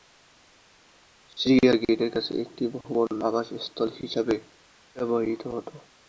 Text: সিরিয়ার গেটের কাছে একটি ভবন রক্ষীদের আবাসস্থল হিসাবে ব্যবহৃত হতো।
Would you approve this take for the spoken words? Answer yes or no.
no